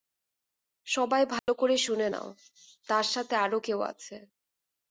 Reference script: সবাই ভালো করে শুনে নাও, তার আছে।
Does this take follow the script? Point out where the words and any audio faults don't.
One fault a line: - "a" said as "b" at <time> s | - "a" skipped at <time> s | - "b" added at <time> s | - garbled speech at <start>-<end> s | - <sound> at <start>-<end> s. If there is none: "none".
- dropout at 1.4-1.5 s
- "সাথে আরো কেউ" added at 3.1 s